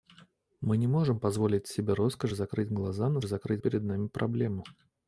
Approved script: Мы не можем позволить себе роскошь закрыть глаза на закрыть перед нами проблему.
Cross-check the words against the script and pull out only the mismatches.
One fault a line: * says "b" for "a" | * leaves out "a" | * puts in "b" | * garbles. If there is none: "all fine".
all fine